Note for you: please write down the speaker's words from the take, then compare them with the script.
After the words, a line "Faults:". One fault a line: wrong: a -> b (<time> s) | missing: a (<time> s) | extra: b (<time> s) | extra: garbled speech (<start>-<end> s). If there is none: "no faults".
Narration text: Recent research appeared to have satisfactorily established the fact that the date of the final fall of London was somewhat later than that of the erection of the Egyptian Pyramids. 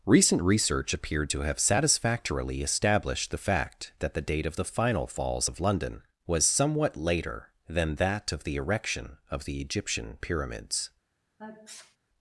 Recent research appeared to have satisfactorily established the fact that the date of the final falls of London was somewhat later than that of the erection of the Egyptian Pyramids.
Faults:
wrong: fall -> falls (5.1 s)